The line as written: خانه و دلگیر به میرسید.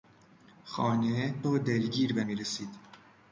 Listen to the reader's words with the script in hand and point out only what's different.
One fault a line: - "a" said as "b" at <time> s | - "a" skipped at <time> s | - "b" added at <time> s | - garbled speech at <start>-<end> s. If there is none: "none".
none